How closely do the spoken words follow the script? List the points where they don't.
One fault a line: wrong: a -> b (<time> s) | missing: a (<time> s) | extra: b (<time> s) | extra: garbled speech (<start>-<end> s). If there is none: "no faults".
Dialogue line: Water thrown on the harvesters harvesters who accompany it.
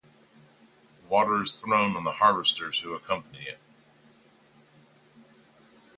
extra: is (1.4 s)
missing: harvesters (2.8 s)